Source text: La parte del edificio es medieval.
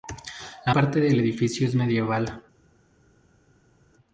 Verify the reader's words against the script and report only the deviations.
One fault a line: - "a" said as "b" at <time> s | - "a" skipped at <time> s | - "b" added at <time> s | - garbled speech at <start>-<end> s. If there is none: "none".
none